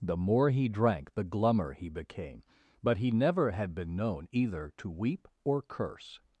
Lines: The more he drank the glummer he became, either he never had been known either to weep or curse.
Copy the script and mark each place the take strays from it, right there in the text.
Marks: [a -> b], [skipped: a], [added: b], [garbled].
The more he drank the glummer he became, [either -> but] he never had been known either to weep or curse.